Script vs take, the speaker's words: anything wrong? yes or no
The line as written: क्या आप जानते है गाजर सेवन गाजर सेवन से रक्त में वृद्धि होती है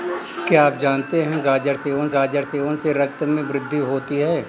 no